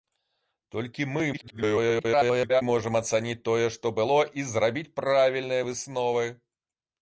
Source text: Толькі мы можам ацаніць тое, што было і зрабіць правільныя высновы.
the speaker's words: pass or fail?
fail